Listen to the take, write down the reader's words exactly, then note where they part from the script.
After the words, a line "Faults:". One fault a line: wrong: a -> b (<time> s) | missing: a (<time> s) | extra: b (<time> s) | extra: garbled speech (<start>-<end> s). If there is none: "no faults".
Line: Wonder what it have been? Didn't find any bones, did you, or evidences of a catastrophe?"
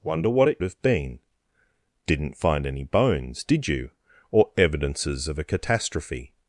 Wonder what it have been? Didn't find any bones, did you, or evidences of a catastrophe?"
Faults:
no faults